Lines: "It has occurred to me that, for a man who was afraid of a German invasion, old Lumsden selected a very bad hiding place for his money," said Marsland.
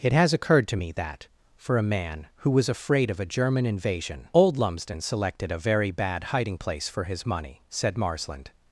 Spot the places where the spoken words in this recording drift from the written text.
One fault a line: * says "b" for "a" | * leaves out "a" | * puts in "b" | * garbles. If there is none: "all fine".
all fine